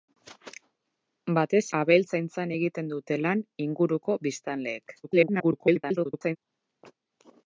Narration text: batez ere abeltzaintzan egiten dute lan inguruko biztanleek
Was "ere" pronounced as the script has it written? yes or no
no